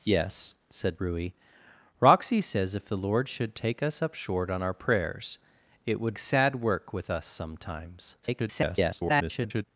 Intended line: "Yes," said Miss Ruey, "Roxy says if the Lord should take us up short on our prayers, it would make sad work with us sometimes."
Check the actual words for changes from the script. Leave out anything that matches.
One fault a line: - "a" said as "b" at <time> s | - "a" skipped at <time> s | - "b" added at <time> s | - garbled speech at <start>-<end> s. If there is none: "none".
- "Miss" skipped at 1.0 s
- "make" skipped at 6.2 s
- garbled speech at 8.2-9.6 s